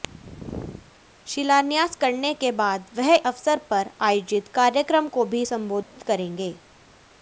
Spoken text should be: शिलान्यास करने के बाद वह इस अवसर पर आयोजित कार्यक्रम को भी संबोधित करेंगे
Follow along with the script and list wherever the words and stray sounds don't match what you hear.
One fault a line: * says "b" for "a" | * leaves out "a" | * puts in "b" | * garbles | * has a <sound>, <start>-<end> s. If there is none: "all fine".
* leaves out "इस"
* has a dropout, 5.8-6.0 s